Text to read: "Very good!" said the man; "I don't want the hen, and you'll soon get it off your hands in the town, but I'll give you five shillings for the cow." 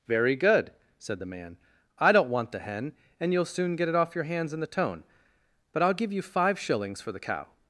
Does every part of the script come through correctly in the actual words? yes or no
no